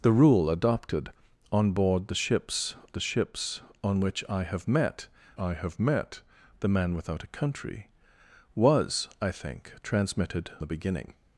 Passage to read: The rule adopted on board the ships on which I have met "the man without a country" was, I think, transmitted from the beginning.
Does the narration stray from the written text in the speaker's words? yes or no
yes